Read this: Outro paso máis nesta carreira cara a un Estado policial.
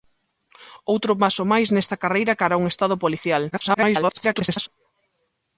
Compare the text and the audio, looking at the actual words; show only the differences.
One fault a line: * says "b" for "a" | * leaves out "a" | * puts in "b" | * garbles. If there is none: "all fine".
* garbles